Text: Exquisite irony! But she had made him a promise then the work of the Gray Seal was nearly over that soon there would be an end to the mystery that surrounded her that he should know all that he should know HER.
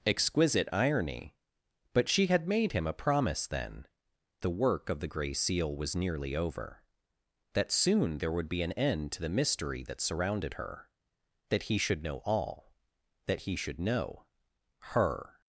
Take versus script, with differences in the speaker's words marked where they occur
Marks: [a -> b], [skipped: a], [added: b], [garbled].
Exquisite irony! But she had made him a promise then the work of the Gray Seal was nearly over that soon there would be an end to the mystery that surrounded her that he should know all that he should know HER.